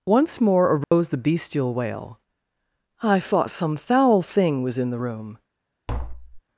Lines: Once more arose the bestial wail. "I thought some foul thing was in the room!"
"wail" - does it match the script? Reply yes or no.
yes